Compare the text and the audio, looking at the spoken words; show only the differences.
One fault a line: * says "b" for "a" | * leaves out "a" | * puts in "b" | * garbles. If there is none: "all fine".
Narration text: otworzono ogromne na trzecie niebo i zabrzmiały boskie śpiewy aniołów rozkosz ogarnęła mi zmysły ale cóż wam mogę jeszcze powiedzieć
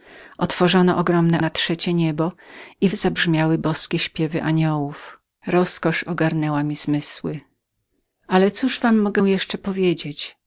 all fine